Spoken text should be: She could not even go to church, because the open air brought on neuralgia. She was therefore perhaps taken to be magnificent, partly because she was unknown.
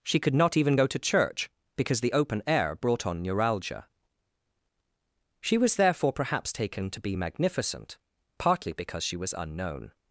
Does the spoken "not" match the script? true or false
true